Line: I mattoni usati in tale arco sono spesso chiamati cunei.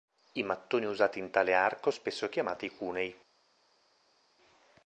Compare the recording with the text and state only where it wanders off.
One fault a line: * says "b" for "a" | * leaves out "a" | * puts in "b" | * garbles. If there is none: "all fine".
* leaves out "sono"